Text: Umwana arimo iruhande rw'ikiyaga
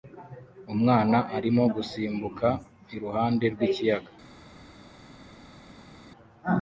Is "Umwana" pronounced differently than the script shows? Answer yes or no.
no